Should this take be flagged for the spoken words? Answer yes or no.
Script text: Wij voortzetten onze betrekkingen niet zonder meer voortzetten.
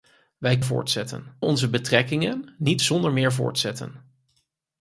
no